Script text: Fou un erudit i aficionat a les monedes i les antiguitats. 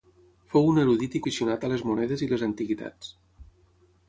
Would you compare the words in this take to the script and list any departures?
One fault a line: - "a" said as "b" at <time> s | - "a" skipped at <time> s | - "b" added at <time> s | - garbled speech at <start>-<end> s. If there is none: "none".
none